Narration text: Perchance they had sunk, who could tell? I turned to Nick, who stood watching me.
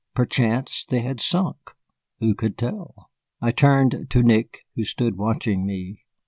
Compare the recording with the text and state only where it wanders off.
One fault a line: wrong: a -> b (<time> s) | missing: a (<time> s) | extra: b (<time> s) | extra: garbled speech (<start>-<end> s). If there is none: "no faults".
no faults